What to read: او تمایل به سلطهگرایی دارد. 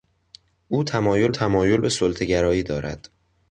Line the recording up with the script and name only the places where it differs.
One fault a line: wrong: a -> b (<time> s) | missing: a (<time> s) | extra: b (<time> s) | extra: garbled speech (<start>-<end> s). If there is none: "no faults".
extra: تمایل (1.3 s)